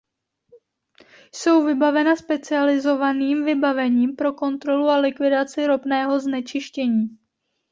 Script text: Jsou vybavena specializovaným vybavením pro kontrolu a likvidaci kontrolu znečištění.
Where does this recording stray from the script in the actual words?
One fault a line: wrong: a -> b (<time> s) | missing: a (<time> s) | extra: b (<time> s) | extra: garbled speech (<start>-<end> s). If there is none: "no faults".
wrong: kontrolu -> ropného (5.6 s)